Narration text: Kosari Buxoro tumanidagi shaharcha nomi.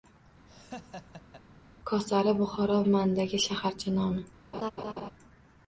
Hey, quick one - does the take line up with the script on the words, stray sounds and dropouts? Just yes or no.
no